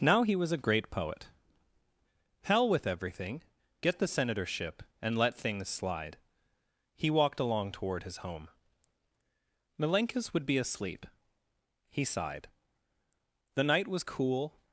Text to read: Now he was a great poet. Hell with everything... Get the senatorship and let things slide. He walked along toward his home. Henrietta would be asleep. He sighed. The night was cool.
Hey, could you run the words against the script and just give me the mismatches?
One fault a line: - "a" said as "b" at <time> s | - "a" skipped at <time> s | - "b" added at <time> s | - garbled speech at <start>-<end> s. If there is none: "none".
- "Henrietta" said as "Milenkis" at 9.8 s